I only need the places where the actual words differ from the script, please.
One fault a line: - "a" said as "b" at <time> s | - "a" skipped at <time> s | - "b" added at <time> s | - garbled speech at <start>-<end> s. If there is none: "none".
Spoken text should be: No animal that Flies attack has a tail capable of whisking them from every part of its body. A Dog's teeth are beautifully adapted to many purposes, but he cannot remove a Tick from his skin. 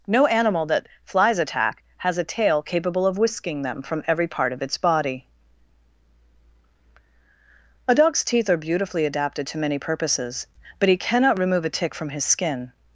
none